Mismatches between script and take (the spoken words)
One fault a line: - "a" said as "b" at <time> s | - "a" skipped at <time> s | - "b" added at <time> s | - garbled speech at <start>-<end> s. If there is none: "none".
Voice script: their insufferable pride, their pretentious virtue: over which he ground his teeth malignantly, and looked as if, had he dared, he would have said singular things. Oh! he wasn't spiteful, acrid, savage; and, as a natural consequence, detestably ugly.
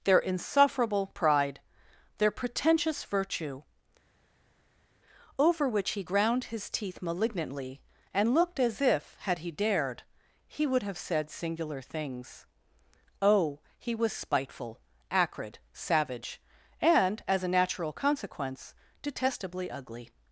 - "wasn't" said as "was" at 13.9 s